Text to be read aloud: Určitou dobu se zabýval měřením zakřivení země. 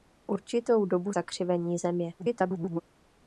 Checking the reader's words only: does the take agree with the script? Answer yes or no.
no